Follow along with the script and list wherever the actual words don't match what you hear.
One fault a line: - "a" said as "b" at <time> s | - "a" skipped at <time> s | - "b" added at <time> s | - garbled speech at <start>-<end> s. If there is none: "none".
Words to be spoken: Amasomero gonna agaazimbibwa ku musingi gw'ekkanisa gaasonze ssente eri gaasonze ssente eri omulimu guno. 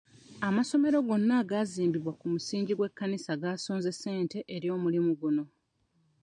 - "gaasonze ssente eri" skipped at 4.7 s